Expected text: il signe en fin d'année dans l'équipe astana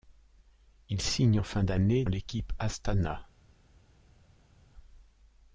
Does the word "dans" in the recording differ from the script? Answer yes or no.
yes